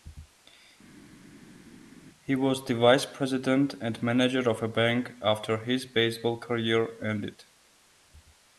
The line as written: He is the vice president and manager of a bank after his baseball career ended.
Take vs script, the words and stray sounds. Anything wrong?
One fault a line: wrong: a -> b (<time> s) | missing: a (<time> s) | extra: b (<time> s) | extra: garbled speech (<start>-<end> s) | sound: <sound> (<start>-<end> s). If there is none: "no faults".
wrong: is -> was (2.3 s)